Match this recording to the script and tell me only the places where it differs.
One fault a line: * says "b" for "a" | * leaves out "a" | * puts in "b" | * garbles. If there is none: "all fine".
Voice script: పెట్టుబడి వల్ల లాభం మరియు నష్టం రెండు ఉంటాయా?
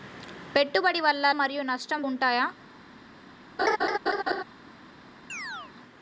* leaves out "లాభం"
* leaves out "రెండు"